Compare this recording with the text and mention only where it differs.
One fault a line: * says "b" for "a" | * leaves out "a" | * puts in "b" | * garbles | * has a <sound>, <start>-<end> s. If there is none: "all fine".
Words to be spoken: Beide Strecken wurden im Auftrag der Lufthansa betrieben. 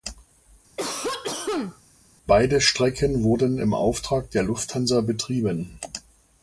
* has a cough, 0.8-1.8 s